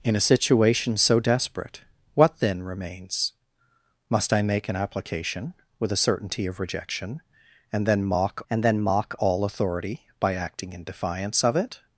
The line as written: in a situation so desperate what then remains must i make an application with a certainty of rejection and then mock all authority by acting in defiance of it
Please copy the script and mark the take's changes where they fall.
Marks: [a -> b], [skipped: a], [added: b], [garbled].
in a situation so desperate what then remains must i make an application with a certainty of rejection and then mock [added: and then mock] all authority by acting in defiance of it